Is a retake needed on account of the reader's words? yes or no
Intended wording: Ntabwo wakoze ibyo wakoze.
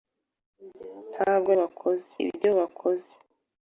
no